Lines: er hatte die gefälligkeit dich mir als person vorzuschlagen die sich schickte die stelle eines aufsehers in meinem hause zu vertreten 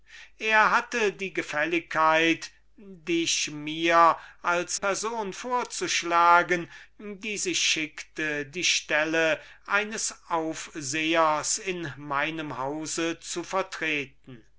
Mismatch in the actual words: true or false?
false